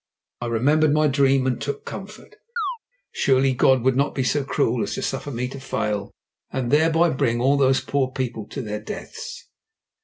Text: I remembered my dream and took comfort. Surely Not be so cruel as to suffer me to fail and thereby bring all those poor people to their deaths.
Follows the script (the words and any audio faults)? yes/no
no